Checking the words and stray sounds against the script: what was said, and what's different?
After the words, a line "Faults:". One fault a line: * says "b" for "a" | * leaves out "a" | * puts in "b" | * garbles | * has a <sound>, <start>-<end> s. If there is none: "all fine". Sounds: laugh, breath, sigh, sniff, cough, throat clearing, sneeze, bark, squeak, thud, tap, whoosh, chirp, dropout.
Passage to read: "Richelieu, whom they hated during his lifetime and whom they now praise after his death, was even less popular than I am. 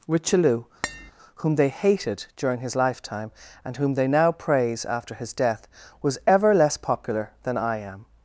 "Richelieu, whom they hated during his lifetime and whom they now praise after his death, was ever less popular than I am.
Faults:
* has a tap, 0.8-1.1 s
* says "ever" for "even"